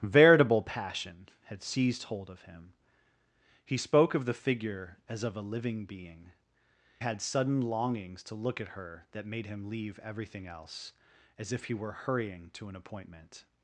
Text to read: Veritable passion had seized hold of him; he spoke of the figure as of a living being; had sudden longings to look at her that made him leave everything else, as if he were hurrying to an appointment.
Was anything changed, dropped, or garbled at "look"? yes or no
no